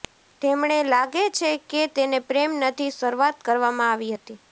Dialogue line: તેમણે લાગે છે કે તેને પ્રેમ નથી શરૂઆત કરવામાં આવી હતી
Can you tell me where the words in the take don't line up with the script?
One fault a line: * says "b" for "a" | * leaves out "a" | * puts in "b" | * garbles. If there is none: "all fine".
all fine